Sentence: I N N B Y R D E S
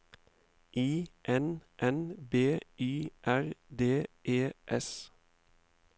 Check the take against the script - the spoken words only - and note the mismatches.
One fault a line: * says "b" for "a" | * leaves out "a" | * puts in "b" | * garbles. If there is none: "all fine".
all fine